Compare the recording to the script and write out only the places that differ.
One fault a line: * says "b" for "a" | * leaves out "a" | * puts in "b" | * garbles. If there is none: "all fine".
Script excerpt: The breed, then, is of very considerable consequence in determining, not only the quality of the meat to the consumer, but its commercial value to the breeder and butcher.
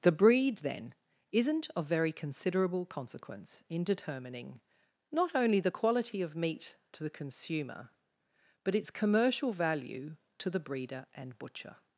* says "isn't" for "is"
* leaves out "the"